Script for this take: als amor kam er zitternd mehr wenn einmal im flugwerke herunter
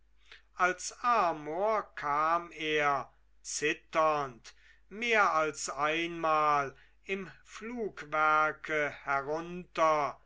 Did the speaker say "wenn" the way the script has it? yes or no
no